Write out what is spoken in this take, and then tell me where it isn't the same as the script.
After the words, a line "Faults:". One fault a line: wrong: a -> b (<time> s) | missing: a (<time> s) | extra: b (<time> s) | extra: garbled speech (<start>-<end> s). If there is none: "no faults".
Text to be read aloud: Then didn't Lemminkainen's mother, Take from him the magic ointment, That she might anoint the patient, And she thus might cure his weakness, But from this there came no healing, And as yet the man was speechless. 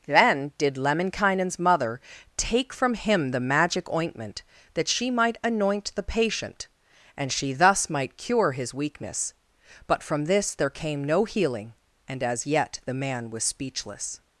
Then did Lemminkainen's mother, Take from him the magic ointment, That she might anoint the patient, And she thus might cure his weakness, But from this there came no healing, And as yet the man was speechless.
Faults:
wrong: didn't -> did (0.6 s)